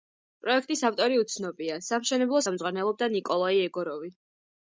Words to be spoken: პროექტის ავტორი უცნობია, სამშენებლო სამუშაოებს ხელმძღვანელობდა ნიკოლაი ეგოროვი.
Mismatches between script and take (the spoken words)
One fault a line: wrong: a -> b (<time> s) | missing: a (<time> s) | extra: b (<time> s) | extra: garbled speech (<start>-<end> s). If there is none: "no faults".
missing: სამუშაოებს (2.4 s)